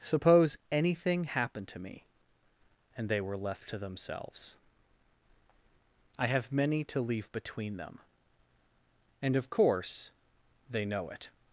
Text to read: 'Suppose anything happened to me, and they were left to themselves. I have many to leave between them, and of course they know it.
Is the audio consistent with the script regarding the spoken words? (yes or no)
yes